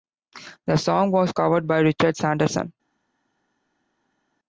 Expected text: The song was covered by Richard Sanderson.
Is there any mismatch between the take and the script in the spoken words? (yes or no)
no